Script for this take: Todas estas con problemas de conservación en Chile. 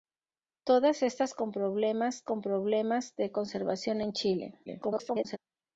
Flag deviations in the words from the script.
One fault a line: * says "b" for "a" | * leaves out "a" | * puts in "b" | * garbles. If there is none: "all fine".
* puts in "con problemas"
* garbles